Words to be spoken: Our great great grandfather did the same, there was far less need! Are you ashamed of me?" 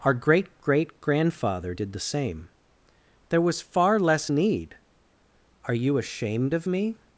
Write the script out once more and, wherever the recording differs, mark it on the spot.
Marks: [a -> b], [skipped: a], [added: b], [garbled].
Our great great grandfather did the same, there was far less need! Are you ashamed of me?"